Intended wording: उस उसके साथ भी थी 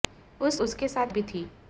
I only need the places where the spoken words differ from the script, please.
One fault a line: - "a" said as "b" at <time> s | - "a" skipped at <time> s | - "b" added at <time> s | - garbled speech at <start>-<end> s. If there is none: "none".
none